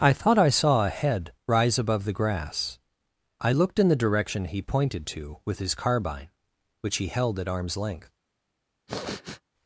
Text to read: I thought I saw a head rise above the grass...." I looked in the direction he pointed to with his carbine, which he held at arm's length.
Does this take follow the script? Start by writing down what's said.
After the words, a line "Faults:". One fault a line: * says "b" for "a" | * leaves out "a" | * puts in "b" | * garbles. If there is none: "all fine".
I thought I saw a head rise above the grass...." I looked in the direction he pointed to with his carbine, which he held at arm's length.
Faults:
all fine